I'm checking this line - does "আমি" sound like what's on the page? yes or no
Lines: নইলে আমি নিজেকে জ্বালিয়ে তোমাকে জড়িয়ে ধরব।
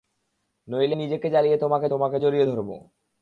no